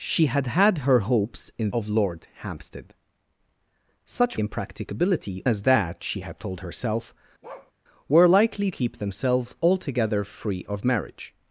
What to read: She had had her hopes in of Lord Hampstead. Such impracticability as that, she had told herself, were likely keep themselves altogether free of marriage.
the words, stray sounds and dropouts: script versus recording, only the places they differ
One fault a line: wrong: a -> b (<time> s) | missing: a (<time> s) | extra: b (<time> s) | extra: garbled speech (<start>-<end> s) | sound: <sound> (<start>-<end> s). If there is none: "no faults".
sound: bark (7.4-7.7 s)